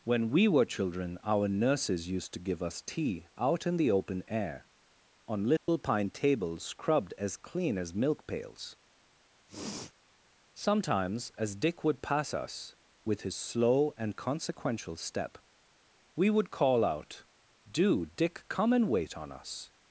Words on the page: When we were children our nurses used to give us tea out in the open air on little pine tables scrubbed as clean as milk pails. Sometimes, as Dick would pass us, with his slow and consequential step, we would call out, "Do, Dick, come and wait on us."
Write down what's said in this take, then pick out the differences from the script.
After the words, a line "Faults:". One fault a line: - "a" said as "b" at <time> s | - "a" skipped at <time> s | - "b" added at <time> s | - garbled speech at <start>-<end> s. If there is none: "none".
When we were children our nurses used to give us tea out in the open air on little pine tables scrubbed as clean as milk pails. Sometimes, as Dick would pass us, with his slow and consequential step, we would call out, "Do, Dick, come and wait on us."
Faults:
none